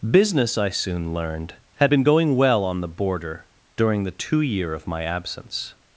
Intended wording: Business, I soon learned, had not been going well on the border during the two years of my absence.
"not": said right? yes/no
no